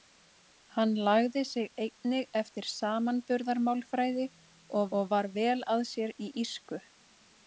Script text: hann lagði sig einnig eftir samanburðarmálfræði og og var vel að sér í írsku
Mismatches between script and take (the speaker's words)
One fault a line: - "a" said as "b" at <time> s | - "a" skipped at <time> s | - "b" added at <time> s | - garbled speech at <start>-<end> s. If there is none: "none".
none